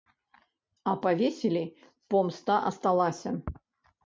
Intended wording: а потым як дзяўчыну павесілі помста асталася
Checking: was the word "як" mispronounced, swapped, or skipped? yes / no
yes